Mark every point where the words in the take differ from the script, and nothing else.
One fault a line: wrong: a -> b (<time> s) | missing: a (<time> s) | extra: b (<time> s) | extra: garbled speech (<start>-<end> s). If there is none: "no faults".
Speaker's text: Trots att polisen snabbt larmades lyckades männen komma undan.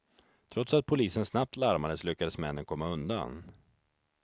no faults